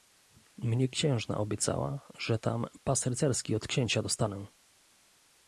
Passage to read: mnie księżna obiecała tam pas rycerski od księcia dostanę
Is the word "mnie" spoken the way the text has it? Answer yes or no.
yes